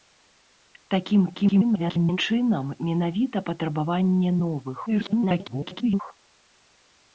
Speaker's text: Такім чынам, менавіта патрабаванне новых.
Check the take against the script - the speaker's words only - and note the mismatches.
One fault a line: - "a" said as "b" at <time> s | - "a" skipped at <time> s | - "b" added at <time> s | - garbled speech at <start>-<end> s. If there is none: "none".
- garbled speech at 1.3-2.2 s
- garbled speech at 4.9-6.0 s